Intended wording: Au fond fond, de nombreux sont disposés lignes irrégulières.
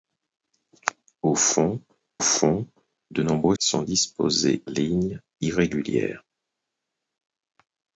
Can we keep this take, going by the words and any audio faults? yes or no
yes